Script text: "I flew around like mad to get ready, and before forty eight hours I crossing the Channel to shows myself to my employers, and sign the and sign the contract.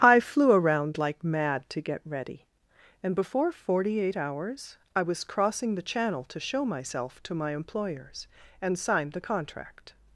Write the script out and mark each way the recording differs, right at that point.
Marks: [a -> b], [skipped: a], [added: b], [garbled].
"I flew around like mad to get ready, and before forty eight hours I [added: was] crossing the Channel to [shows -> show] myself to my employers, and sign the [skipped: and sign the] contract.